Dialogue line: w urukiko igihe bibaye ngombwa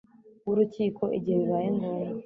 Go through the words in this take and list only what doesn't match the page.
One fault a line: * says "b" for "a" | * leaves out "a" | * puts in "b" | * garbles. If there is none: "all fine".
all fine